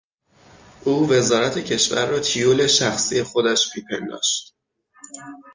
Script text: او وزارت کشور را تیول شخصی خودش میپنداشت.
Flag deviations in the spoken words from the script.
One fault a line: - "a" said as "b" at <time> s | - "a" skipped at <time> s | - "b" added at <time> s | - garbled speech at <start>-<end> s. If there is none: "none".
none